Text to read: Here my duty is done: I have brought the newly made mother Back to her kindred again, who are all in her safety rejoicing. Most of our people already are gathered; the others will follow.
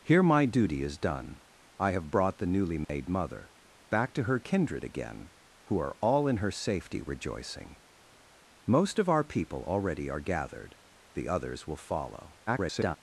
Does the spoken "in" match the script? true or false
true